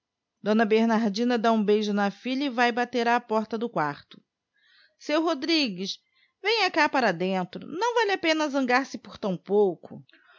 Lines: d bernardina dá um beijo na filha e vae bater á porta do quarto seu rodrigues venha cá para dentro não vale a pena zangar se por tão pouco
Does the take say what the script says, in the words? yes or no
yes